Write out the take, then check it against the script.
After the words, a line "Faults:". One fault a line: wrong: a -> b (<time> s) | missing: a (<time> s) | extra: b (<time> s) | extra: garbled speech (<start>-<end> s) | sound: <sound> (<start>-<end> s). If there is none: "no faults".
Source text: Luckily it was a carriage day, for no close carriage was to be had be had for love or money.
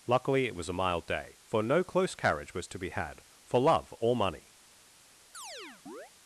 Luckily it was a mild day, for no close carriage was to be had for love or money.
Faults:
wrong: carriage -> mild (0.7 s)
missing: be had (3.2 s)
sound: chirp (5.3-6.1 s)